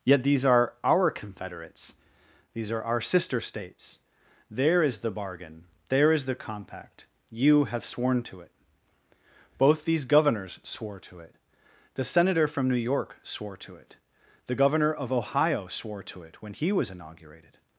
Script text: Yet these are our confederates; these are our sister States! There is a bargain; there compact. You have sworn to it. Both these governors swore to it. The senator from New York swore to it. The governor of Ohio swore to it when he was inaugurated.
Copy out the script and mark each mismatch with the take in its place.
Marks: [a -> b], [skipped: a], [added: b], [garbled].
Yet these are our confederates; these are our sister States! There is [a -> the] bargain; there [added: is the] compact. You have sworn to it. Both these governors swore to it. The senator from New York swore to it. The governor of Ohio swore to it when he was inaugurated.